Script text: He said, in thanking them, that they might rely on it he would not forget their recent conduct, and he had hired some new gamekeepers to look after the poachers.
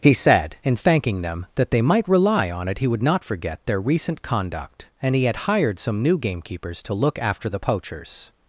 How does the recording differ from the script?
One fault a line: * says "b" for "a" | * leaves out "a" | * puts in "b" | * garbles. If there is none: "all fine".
all fine